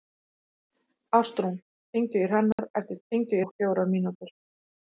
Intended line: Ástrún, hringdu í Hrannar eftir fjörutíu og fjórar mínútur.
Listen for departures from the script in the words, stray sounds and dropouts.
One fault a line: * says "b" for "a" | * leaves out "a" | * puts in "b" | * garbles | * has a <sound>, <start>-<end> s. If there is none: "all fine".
* has a dropout, 2.5-2.6 s
* says "hringdu" for "fjörutíu"